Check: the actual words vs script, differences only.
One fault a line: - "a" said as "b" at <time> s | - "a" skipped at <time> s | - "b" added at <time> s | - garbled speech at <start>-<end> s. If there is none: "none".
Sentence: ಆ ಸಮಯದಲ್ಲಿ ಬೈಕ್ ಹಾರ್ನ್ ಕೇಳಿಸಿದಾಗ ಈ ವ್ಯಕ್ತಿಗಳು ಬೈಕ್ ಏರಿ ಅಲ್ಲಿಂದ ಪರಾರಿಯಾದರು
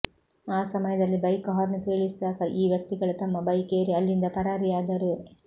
- "ತಮ್ಮ" added at 3.2 s